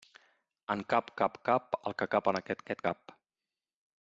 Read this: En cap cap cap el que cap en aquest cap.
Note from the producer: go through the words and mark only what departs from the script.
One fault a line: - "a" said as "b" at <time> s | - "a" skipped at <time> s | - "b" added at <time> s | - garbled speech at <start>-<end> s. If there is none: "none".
- "aquest" added at 2.6 s